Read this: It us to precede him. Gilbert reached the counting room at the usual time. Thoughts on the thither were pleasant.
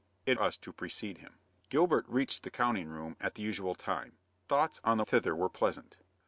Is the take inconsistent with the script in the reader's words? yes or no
no